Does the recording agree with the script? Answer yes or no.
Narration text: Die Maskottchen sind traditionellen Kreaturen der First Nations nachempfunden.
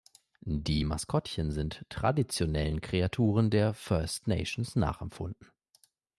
yes